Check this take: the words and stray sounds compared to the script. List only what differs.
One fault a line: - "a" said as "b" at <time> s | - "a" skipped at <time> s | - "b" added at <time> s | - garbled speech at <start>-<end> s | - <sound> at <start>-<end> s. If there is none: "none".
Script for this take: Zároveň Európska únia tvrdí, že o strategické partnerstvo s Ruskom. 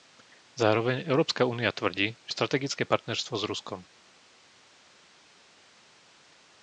none